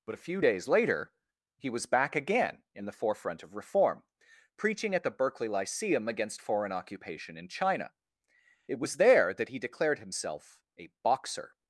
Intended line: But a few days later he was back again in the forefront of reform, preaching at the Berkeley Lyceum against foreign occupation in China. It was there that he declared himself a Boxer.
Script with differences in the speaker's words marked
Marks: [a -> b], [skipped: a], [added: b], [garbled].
But a few days later he was back again in the forefront of reform, preaching at the Berkeley Lyceum against foreign occupation in China. It was there that he declared himself a Boxer.